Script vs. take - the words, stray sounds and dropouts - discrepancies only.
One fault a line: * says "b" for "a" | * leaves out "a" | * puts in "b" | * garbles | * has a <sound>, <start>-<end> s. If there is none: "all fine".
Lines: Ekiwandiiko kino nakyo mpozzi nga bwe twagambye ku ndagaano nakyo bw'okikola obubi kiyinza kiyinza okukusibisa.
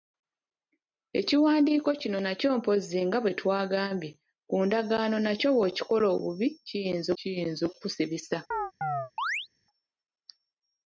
* has a chirp, 8.5-9.5 s